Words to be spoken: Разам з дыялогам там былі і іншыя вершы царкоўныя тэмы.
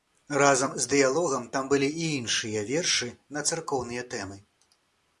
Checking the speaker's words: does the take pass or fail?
fail